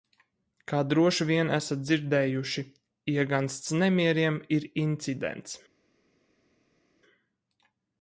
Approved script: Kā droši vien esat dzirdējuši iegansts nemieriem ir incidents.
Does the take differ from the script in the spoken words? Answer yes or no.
no